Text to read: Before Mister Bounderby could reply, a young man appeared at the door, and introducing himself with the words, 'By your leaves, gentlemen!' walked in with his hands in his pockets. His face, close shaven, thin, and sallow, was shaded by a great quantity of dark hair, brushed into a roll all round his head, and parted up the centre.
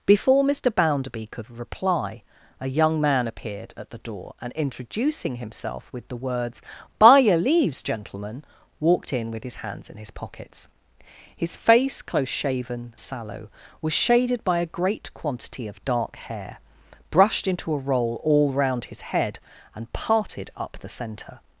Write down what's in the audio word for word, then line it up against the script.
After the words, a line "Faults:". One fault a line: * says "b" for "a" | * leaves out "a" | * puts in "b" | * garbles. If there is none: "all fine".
Before Mister Bounderby could reply, a young man appeared at the door, and introducing himself with the words, 'By your leaves, gentlemen!' walked in with his hands in his pockets. His face, close shaven, sallow, was shaded by a great quantity of dark hair, brushed into a roll all round his head, and parted up the centre.
Faults:
* leaves out "thin and"